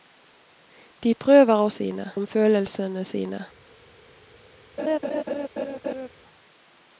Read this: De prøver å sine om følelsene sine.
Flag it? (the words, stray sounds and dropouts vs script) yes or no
yes